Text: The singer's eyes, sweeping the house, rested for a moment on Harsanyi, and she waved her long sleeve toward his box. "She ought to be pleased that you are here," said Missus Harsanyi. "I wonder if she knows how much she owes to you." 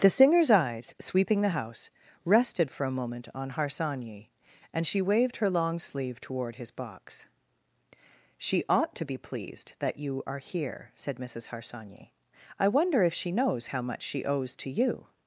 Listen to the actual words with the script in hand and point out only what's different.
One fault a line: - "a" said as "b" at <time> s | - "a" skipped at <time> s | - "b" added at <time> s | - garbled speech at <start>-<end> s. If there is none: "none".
none